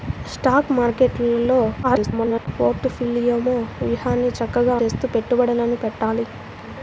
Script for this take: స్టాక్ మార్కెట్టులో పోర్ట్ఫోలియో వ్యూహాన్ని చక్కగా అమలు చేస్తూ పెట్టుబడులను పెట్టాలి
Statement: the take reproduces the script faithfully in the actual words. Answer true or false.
false